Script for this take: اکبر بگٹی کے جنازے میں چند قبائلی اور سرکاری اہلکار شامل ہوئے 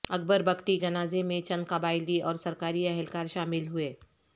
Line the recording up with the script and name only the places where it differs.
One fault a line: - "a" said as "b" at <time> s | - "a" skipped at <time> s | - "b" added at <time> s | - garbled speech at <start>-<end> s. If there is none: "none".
- "کے" skipped at 0.8 s